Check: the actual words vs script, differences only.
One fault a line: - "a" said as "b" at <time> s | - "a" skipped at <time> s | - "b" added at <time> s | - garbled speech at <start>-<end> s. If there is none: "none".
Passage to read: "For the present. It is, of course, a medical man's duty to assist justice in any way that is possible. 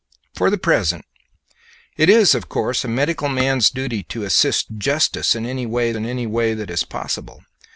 - "in any way" added at 5.9 s